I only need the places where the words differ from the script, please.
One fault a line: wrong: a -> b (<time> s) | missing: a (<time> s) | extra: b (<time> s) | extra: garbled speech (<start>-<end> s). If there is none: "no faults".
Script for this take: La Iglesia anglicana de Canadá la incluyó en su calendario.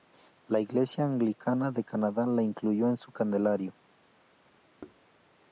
no faults